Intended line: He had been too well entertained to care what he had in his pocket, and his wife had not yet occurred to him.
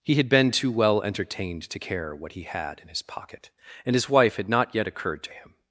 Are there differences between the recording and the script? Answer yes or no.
no